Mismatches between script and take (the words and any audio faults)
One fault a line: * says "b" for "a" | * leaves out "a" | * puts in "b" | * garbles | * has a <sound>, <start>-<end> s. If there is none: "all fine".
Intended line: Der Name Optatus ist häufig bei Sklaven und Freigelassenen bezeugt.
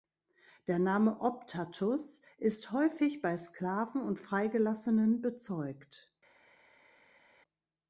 all fine